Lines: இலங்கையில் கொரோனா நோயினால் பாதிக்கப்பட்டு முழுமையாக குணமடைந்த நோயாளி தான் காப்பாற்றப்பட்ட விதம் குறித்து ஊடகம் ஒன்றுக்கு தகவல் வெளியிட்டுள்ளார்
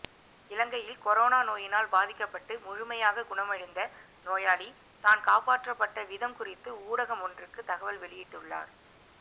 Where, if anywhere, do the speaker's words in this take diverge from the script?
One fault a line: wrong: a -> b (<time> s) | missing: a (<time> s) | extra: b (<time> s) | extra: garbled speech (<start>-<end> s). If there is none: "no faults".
no faults